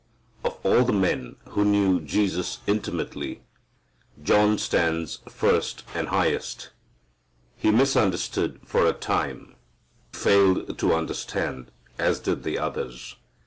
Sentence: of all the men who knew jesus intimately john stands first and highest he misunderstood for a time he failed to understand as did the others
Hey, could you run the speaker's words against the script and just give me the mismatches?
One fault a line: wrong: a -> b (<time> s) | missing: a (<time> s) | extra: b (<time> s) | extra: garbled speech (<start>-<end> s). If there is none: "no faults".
missing: he (9.5 s)